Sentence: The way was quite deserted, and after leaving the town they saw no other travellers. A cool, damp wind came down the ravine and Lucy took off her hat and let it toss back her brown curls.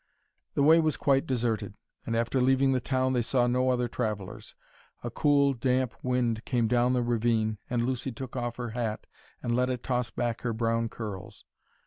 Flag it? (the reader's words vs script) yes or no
no